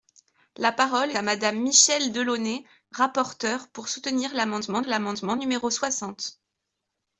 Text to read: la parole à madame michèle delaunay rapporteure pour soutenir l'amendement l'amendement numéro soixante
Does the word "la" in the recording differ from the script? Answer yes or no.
no